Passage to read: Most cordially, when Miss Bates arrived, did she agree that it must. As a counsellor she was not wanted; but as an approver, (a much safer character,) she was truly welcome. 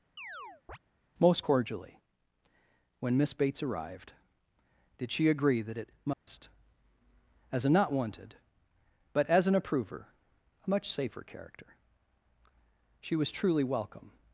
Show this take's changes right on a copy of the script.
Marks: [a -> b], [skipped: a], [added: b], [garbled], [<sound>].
[chirp] Most cordially, when Miss Bates arrived, did she agree that it must. [dropout] As a [skipped: counsellor she was] not wanted; but as an approver, (a much safer character,) she was truly welcome.